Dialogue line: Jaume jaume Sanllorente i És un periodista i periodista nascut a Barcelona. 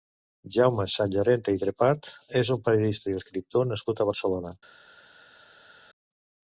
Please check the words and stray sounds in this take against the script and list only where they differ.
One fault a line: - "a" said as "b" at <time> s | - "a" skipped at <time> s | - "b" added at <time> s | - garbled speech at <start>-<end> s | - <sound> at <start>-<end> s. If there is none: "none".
- "jaume" skipped at 0.8 s
- "Trepat" added at 1.6 s
- "periodista" said as "escriptor" at 3.2 s